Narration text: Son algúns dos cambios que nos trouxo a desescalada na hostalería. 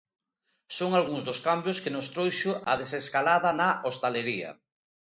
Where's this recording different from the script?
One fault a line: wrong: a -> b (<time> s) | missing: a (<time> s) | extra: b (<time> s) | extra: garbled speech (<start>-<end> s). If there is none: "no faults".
no faults